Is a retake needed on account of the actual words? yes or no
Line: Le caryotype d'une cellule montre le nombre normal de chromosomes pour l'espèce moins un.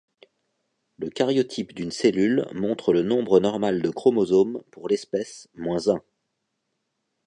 no